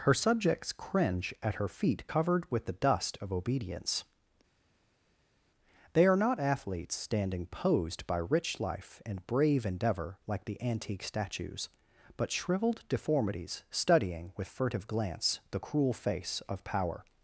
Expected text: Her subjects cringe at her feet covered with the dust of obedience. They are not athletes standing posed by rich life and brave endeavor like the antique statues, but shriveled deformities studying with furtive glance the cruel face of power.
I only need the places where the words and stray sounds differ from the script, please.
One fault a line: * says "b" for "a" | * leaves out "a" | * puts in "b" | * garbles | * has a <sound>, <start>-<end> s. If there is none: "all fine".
all fine